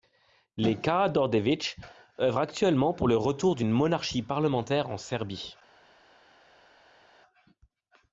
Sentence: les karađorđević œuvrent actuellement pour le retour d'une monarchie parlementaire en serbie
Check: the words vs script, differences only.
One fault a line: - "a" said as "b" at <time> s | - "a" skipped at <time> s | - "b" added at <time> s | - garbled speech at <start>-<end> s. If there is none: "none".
none